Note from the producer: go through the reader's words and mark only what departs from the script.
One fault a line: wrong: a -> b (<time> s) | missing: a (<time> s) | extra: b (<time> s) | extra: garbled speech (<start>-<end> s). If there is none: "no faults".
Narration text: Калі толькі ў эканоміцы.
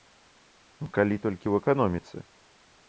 no faults